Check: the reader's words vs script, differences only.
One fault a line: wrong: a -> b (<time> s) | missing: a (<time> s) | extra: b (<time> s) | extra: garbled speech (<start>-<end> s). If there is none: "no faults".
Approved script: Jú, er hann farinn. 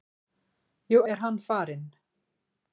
no faults